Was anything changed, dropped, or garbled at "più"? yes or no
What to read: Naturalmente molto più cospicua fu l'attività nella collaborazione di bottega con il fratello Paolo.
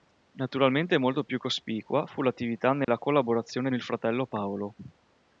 no